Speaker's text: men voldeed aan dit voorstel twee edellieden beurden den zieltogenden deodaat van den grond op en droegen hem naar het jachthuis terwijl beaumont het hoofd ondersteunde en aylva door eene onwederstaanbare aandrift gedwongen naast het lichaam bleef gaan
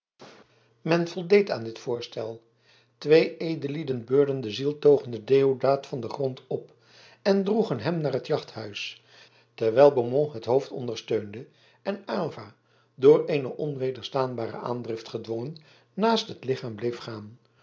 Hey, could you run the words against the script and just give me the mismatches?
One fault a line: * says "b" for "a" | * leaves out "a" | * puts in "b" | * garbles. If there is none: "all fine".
all fine